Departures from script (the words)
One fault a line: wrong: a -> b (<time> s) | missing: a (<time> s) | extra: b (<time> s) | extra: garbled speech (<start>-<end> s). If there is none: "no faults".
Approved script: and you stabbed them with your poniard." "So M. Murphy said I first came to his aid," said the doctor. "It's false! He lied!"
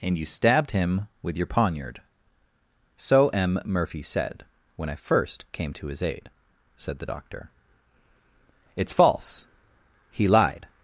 wrong: them -> him (0.7 s)
extra: when (4.8 s)